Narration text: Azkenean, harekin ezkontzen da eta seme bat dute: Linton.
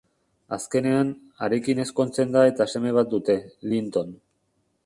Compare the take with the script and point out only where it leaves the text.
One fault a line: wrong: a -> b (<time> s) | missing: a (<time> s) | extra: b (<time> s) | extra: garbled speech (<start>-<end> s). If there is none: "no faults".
no faults